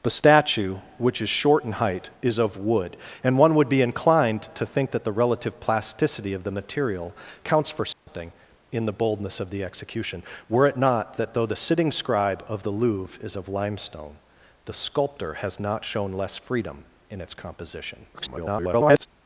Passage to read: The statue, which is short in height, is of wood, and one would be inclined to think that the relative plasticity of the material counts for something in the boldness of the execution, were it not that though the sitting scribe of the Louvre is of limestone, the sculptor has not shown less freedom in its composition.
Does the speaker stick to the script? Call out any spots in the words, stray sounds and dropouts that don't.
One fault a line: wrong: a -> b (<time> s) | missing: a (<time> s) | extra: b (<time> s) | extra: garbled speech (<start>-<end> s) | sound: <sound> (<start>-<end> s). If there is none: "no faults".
sound: dropout (7.9-8.1 s)
extra: garbled speech (18.1-19.1 s)